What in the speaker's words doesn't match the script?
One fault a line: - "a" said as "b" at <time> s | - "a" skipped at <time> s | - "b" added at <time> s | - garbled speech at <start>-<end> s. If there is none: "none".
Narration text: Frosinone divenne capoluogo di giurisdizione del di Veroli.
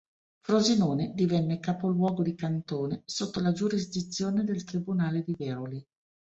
- "cantone sotto la" added at 2.3 s
- "tribunale" added at 4.6 s